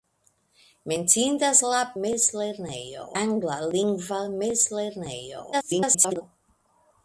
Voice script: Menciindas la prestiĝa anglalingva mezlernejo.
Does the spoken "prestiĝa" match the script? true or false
false